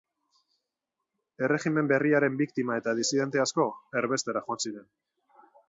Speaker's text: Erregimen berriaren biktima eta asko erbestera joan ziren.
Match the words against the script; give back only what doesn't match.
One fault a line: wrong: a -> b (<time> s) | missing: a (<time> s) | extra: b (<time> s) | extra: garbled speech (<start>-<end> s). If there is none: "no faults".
extra: disidente (3.0 s)